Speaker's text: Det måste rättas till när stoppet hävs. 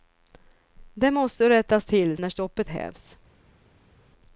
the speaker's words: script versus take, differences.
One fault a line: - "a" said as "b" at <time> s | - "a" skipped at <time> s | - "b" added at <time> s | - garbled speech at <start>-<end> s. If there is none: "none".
none